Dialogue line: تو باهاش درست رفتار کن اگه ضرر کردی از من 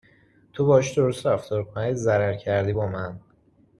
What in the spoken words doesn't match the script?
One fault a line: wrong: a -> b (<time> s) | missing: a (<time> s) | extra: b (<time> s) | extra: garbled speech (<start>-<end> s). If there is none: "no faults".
wrong: از -> با (2.7 s)